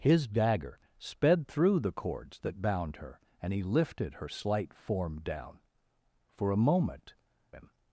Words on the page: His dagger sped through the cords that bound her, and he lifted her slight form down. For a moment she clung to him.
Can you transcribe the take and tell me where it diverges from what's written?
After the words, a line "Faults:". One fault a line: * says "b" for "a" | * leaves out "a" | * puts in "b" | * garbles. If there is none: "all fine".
His dagger sped through the cords that bound her, and he lifted her slight form down. For a moment him.
Faults:
* leaves out "she clung to"